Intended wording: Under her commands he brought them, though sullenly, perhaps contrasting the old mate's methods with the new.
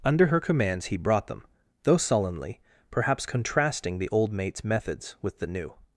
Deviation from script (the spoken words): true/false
false